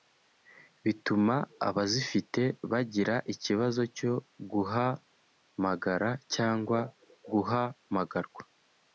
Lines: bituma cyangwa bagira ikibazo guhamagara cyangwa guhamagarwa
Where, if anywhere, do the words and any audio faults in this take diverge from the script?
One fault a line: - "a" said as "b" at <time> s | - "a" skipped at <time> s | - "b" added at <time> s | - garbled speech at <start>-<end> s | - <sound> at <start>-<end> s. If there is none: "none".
- "cyangwa" said as "abazifite" at 1.7 s
- "cyo" added at 4.0 s